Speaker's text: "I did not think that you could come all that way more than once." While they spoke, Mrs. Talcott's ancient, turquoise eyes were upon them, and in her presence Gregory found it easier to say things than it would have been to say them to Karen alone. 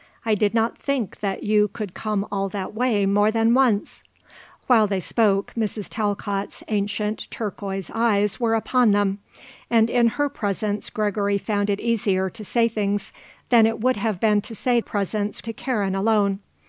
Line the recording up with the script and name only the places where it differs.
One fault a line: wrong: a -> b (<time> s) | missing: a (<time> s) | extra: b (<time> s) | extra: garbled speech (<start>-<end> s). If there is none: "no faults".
wrong: them -> presence (14.8 s)